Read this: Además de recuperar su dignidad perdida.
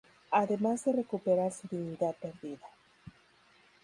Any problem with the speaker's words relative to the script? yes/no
no